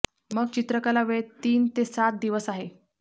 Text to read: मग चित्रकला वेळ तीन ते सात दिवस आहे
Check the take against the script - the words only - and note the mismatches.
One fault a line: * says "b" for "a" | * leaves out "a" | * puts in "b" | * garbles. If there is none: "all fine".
all fine